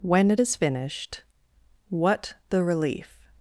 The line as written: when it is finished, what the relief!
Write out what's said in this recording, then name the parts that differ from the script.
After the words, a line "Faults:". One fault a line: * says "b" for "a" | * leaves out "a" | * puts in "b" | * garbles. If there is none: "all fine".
when it is finished, what the relief!
Faults:
all fine